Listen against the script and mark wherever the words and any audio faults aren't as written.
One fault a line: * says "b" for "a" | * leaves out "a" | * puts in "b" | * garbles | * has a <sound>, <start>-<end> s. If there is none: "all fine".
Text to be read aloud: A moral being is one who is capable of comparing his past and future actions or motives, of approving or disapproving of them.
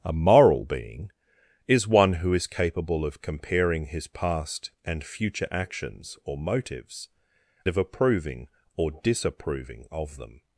all fine